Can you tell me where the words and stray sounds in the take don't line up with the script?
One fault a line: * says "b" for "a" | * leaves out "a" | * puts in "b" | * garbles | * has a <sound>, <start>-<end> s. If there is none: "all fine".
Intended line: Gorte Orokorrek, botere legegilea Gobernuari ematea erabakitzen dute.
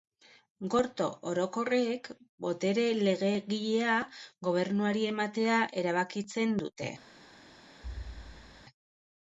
* has a thud, 7.8-8.6 s